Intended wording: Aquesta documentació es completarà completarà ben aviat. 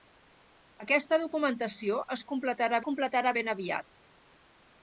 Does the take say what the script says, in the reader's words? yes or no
yes